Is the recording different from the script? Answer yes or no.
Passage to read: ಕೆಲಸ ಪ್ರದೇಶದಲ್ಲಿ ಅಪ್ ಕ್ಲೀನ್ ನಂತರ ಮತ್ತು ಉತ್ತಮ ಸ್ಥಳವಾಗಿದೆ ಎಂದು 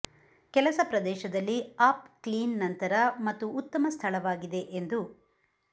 no